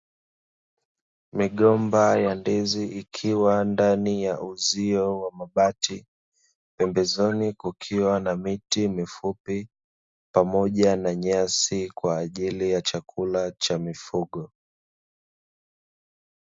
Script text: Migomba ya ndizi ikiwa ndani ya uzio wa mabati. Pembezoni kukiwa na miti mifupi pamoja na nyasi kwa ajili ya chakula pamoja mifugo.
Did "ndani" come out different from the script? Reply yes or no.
no